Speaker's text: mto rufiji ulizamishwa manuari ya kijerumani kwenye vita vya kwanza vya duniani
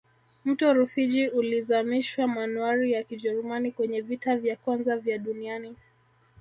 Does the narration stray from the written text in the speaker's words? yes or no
no